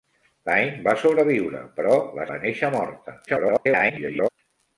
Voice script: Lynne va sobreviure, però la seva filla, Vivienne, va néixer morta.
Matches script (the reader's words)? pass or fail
fail